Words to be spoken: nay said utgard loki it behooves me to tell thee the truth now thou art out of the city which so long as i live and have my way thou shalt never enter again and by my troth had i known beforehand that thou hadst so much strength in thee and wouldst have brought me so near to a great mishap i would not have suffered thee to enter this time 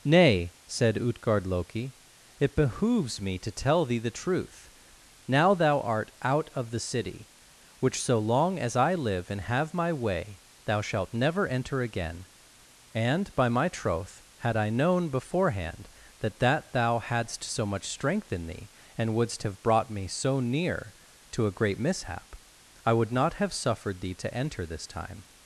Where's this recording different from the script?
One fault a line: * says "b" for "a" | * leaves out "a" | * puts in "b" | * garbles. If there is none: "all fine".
* puts in "that"